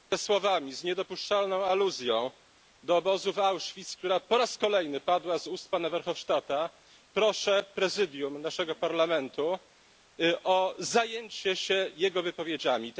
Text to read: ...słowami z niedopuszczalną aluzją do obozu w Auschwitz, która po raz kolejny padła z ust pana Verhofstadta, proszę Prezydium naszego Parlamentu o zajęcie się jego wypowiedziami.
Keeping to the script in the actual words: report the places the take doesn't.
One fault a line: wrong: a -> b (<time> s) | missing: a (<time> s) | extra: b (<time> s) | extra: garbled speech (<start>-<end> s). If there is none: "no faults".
no faults